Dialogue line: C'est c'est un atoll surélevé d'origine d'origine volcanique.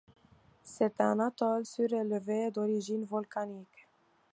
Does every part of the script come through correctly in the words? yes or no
no